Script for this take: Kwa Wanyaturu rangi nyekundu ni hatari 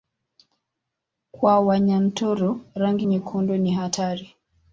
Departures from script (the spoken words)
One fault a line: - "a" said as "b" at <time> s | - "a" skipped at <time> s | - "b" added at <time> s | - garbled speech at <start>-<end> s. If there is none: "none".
none